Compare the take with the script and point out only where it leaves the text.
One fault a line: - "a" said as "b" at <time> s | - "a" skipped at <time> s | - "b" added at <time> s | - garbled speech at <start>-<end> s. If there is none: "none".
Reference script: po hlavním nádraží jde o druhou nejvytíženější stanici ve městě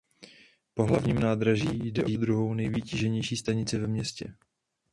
none